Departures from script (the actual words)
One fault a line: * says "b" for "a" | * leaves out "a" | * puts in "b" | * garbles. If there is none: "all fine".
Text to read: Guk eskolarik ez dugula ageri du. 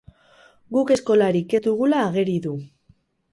all fine